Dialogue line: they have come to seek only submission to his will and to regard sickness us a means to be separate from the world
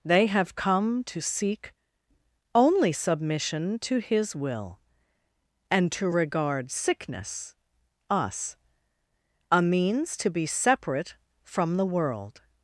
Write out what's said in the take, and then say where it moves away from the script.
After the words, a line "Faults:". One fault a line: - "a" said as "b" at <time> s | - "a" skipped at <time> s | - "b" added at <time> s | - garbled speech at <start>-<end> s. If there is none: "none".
they have come to seek only submission to his will and to regard sickness us a means to be separate from the world
Faults:
none